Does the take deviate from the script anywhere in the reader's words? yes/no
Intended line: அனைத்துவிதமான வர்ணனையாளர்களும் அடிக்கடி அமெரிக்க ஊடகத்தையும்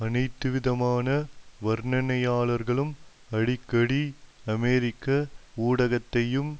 no